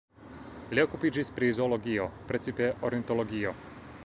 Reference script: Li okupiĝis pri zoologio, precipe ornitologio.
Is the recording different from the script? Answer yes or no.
no